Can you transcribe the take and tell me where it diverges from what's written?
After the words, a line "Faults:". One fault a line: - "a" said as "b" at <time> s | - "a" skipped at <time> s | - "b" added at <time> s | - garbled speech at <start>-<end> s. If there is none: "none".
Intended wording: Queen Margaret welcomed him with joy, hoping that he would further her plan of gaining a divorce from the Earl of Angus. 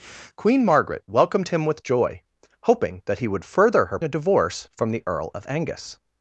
Queen Margaret welcomed him with joy, hoping that he would further her a divorce from the Earl of Angus.
Faults:
- "plan of gaining" skipped at 4.0 s